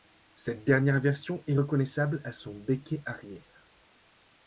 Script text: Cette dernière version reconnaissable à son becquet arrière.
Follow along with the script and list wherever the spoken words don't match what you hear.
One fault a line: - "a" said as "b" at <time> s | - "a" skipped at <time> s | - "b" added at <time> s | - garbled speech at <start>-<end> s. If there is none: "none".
- "est" added at 1.4 s